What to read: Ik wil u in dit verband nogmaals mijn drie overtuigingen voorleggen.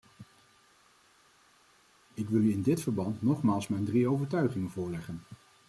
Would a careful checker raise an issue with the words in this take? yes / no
no